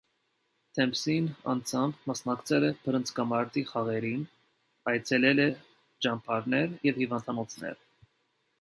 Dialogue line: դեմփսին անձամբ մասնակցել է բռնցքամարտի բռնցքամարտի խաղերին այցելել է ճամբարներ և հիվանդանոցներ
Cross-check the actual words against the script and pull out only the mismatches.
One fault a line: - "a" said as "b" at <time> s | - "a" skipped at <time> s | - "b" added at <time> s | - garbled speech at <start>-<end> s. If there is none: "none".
- "բռնցքամարտի" skipped at 3.7 s